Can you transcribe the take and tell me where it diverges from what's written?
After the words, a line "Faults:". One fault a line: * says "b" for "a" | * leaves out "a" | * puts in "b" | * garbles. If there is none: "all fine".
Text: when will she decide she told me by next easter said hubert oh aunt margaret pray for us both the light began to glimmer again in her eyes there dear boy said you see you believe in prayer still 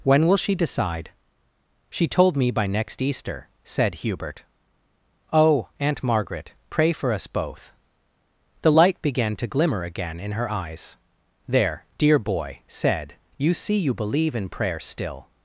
when will she decide she told me by next easter said hubert oh aunt margaret pray for us both the light began to glimmer again in her eyes there dear boy said you see you believe in prayer still
Faults:
all fine